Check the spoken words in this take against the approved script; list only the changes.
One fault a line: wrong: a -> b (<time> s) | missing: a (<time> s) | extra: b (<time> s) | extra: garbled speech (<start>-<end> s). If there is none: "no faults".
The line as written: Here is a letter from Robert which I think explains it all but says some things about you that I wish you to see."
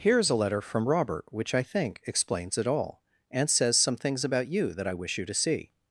wrong: but -> and (3.3 s)